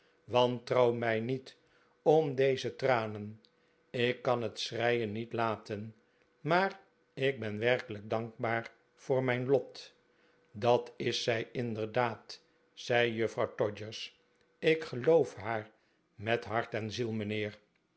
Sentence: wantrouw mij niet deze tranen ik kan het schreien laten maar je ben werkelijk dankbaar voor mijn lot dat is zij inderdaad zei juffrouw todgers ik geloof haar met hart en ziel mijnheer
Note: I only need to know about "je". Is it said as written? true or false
false